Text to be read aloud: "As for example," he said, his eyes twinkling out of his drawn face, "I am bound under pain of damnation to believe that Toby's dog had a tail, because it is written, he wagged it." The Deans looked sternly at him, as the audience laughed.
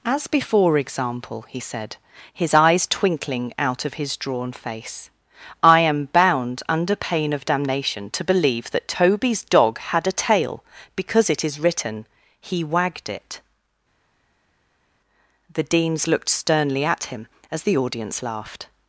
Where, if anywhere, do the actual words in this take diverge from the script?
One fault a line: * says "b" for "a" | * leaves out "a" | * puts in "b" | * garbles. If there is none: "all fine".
* says "before" for "for"